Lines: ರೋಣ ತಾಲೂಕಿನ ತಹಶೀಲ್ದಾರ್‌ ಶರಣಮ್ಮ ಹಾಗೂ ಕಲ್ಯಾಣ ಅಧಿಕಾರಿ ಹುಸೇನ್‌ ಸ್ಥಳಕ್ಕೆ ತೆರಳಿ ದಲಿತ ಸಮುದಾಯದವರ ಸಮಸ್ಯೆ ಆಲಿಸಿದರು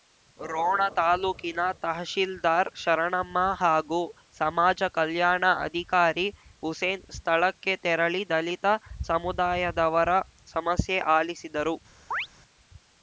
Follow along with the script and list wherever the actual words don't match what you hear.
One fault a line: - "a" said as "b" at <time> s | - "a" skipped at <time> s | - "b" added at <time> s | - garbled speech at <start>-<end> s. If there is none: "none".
- "ಸಮಾಜ" added at 4.4 s